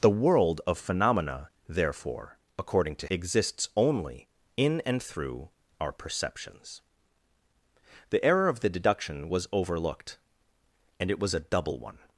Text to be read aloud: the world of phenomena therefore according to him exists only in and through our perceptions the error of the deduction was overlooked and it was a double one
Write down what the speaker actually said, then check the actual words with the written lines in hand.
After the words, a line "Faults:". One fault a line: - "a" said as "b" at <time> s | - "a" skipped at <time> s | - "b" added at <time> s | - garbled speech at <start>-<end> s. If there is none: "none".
the world of phenomena therefore according to exists only in and through our perceptions the error of the deduction was overlooked and it was a double one
Faults:
- "him" skipped at 3.1 s